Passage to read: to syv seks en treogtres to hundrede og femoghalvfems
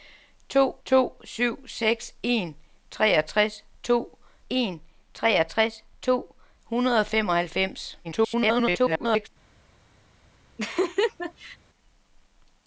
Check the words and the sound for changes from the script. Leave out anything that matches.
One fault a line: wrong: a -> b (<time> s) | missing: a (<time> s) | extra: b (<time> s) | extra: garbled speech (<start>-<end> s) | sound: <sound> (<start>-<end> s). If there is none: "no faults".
extra: to (0.9 s)
extra: en treogtres to (4.5 s)
extra: garbled speech (8.0-9.3 s)
sound: laugh (10.6-11.6 s)